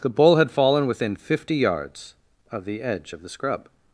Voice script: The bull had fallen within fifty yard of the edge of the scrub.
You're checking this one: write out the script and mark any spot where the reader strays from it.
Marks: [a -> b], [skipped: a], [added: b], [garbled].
The bull had fallen within fifty [yard -> yards] of the edge of the scrub.